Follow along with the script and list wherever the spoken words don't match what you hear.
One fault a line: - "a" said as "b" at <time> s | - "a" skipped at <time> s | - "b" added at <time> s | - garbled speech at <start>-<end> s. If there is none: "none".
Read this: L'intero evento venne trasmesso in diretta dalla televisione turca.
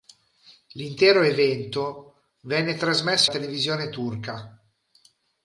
- "in diretta dalla" skipped at 3.3 s